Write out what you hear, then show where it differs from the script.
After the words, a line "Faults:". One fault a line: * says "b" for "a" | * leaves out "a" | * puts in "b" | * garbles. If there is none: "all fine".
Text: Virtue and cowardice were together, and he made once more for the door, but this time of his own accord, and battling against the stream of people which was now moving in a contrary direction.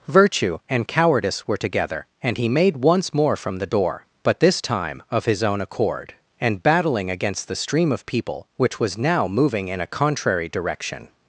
Virtue and cowardice were together, and he made once more from the door, but this time of his own accord, and battling against the stream of people which was now moving in a contrary direction.
Faults:
* says "from" for "for"